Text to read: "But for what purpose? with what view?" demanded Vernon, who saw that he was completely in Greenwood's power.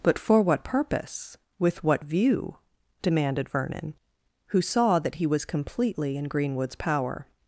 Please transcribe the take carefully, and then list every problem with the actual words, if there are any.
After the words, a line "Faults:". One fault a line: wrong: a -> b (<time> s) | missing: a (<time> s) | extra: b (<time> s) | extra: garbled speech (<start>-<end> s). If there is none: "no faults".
"But for what purpose? with what view?" demanded Vernon, who saw that he was completely in Greenwood's power.
Faults:
no faults